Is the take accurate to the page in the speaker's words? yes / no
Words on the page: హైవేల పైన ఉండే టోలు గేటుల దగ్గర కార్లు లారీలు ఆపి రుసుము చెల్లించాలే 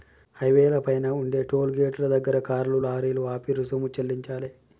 yes